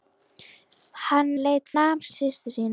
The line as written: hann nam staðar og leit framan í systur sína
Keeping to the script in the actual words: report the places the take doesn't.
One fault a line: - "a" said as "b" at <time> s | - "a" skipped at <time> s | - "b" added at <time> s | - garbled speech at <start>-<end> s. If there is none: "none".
- "nam staðar" skipped at 1.3 s
- "framan" said as "nam" at 1.8 s